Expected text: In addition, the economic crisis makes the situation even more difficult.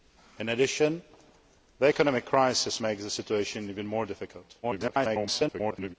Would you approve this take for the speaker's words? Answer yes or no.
no